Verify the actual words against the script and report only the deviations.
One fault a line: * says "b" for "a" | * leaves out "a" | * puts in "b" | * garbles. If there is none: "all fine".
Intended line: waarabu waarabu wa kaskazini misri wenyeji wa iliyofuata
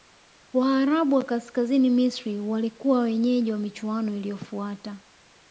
* leaves out "waarabu"
* puts in "walikuwa"
* puts in "michuano"